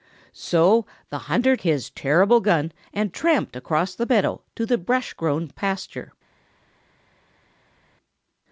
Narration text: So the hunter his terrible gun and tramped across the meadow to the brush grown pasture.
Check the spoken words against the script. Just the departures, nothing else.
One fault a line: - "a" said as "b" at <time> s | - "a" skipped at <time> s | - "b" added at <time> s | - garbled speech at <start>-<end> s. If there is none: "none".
none